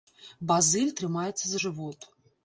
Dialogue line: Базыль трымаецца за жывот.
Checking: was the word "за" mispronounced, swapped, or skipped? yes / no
no